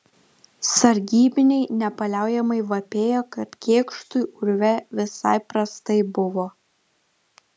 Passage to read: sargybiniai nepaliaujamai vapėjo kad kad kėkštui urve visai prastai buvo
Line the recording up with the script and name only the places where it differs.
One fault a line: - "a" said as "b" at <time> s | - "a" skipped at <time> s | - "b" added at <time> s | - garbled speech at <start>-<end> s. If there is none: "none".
- "kad" skipped at 3.5 s